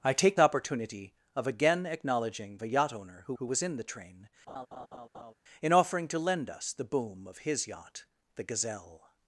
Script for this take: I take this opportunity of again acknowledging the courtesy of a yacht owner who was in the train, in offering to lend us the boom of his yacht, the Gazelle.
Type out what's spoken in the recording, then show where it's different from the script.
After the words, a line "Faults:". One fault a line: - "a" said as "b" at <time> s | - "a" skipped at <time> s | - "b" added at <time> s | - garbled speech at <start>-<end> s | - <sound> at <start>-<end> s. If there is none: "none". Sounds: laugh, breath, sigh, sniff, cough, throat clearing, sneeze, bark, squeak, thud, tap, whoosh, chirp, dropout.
I take opportunity of again acknowledging a yacht owner who who was in the train, in offering to lend us the boom of his yacht, the Gazelle.
Faults:
- "this" skipped at 0.4 s
- "the courtesy of" skipped at 2.6 s
- "who" added at 3.4 s
- laugh at 4.5-5.3 s